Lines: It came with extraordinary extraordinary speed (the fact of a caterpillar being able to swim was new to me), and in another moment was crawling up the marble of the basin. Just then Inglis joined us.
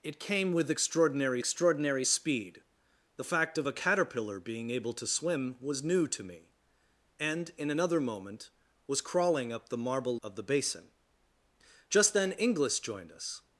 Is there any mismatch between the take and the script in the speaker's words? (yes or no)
no